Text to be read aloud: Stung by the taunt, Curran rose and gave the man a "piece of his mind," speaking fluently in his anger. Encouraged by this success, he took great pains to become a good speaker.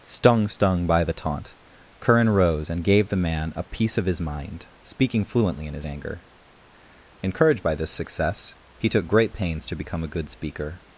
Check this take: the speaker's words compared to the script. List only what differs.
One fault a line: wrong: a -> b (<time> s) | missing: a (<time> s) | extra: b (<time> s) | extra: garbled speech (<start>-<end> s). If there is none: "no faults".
extra: stung (0.5 s)